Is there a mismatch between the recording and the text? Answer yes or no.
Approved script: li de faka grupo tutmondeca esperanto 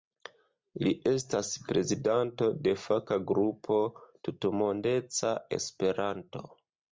yes